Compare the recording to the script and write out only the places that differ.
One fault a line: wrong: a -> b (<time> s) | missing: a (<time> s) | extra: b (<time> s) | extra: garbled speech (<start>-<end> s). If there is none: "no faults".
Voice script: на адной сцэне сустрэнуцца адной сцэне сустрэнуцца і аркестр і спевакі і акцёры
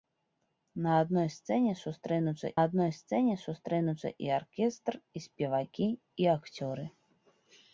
no faults